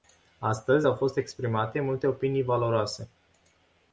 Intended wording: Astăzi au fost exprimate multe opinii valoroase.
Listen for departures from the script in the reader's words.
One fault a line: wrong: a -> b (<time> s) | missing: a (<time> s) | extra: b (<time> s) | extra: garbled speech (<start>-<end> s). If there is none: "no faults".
no faults